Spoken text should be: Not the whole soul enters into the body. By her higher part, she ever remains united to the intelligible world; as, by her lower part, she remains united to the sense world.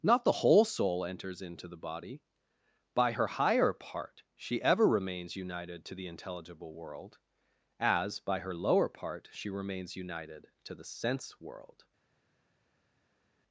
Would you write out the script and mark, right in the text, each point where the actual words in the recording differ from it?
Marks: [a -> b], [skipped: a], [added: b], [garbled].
Not the whole soul enters into the body. By her higher part, she ever remains united to the intelligible world; as, by her lower part, she remains united to the sense world.